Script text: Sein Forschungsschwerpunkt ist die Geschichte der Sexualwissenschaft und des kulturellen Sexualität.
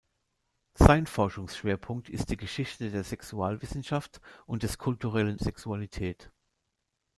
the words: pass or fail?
pass